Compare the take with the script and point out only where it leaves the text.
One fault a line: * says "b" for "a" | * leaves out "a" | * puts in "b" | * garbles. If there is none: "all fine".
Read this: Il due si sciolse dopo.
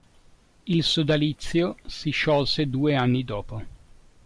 * says "sodalizio" for "due"
* puts in "due anni"